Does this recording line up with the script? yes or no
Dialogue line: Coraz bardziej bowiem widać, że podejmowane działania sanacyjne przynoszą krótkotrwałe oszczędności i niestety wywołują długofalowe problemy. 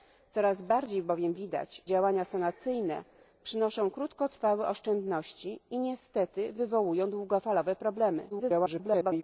no